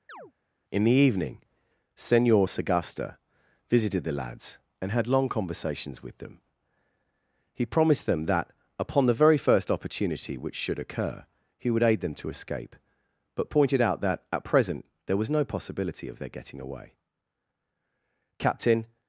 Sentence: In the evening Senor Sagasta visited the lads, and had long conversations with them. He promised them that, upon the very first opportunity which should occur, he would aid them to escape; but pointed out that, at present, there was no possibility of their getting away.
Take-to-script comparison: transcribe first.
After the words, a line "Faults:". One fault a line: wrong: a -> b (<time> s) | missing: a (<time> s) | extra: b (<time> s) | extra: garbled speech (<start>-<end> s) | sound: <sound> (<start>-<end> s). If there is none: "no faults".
In the evening Senor Sagasta visited the lads, and had long conversations with them. He promised them that, upon the very first opportunity which should occur, he would aid them to escape; but pointed out that, at present, there was no possibility of their getting away. "Captain
Faults:
sound: chirp (0.1-0.3 s)
extra: Captain (18.4 s)